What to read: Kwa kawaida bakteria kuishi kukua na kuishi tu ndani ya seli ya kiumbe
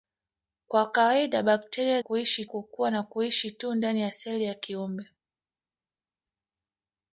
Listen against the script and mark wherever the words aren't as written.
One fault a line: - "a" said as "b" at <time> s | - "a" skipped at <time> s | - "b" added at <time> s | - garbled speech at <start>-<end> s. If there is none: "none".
none